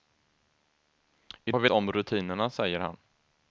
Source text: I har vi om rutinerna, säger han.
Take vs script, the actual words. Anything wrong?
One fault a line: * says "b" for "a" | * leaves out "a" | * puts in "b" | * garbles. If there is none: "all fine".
all fine